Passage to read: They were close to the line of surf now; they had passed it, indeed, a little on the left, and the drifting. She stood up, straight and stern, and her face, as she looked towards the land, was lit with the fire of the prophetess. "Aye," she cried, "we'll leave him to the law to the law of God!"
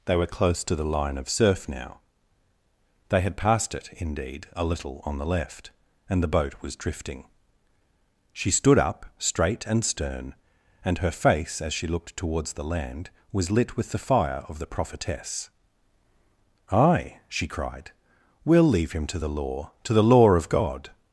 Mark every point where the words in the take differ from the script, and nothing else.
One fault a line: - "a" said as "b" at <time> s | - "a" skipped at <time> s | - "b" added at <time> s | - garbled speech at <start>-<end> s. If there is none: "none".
- "boat was" added at 6.3 s